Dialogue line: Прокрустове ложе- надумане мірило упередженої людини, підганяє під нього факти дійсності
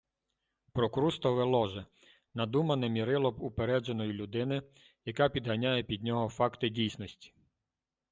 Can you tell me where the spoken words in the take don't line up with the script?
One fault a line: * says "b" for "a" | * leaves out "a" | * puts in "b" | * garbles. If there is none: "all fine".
* puts in "яка"